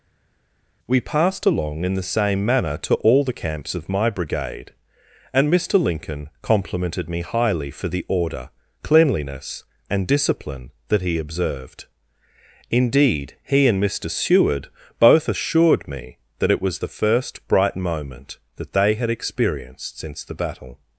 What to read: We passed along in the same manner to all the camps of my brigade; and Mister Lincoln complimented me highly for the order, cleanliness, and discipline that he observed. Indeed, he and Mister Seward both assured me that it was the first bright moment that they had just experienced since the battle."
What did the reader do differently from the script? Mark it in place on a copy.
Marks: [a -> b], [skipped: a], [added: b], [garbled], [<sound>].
We passed along in the same manner to all the camps of my brigade; and Mister Lincoln complimented me highly for the order, cleanliness, and discipline that he observed. Indeed, he and Mister Seward both assured me that it was the first bright moment that they had [skipped: just] experienced since the battle."